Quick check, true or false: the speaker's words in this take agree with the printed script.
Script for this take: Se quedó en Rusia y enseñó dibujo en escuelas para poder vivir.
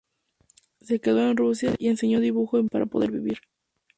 true